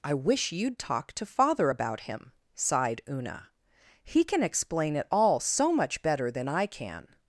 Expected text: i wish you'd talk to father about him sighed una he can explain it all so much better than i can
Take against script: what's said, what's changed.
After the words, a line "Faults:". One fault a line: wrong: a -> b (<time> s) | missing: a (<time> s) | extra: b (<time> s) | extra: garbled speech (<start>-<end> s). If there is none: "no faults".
i wish you'd talk to father about him sighed una he can explain it all so much better than i can
Faults:
no faults